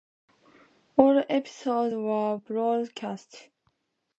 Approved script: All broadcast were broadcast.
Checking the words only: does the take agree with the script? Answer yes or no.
no